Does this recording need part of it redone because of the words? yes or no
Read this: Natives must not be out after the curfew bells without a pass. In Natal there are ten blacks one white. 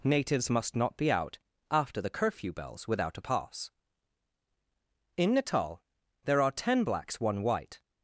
no